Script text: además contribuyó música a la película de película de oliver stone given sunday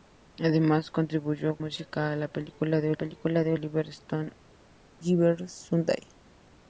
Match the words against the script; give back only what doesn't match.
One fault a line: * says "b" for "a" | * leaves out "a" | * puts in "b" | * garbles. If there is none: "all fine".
all fine